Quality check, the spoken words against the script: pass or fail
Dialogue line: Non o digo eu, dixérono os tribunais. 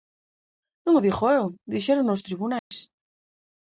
pass